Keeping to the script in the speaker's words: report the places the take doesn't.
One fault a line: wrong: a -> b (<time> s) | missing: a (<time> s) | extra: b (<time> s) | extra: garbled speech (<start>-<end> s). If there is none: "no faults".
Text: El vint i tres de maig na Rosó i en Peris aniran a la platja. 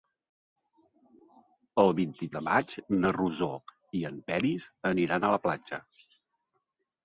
missing: tres (2.3 s)